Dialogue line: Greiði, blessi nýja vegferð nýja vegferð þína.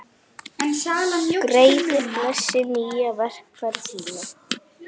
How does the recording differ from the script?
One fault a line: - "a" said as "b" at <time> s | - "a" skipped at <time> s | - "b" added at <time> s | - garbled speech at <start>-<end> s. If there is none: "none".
- "nýja vegferð" skipped at 3.9 s